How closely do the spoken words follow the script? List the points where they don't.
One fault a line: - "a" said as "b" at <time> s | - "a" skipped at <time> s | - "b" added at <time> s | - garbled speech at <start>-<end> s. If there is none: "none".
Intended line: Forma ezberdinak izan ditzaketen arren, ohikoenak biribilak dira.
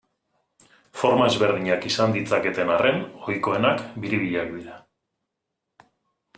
none